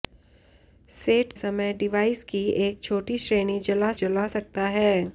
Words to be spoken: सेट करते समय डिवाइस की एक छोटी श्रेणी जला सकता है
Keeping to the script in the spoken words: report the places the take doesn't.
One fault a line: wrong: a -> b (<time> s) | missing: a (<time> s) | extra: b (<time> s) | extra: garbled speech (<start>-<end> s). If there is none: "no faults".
missing: करते (1.3 s)
extra: जला (3.9 s)